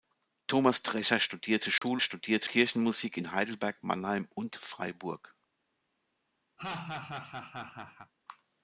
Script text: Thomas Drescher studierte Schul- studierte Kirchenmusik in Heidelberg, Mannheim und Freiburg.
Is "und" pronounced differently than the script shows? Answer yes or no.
no